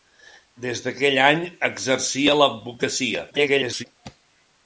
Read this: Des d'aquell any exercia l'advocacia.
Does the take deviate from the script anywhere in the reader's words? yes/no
yes